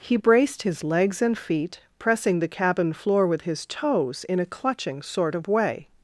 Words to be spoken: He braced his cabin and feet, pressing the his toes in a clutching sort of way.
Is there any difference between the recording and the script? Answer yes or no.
yes